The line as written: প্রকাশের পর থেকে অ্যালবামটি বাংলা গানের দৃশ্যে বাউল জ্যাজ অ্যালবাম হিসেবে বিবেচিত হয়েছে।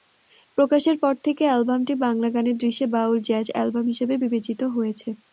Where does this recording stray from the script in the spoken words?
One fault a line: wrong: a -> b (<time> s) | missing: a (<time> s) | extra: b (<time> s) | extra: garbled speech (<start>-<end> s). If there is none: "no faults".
no faults